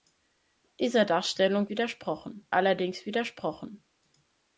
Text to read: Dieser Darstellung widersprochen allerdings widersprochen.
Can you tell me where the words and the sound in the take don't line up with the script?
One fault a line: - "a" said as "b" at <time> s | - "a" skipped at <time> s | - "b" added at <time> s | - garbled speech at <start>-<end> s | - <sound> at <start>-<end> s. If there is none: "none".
none